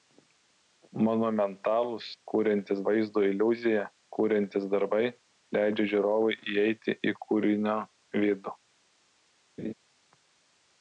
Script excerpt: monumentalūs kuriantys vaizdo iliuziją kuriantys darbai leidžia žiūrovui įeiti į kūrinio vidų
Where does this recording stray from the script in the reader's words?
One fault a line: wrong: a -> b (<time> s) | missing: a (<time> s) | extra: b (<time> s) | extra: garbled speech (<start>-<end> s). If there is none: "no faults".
no faults